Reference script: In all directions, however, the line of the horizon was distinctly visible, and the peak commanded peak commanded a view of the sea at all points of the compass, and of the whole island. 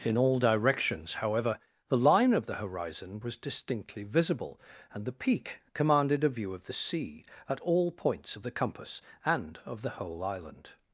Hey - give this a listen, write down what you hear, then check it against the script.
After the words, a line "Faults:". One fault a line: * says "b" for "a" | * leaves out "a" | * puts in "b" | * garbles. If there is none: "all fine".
In all directions, however, the line of the horizon was distinctly visible, and the peak commanded a view of the sea at all points of the compass, and of the whole island.
Faults:
* leaves out "peak commanded"